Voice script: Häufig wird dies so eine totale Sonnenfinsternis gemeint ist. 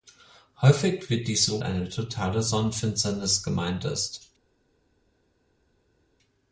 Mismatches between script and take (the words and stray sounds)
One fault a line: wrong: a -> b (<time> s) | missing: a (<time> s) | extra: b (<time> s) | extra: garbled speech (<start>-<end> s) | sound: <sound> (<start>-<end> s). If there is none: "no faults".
no faults